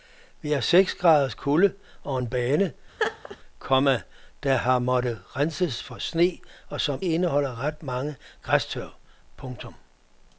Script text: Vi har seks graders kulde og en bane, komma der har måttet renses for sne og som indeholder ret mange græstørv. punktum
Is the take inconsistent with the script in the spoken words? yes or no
no